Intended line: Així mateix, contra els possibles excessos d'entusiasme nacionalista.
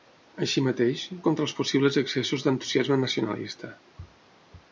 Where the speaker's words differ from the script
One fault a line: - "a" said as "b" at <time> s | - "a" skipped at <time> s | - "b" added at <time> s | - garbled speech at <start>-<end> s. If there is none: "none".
none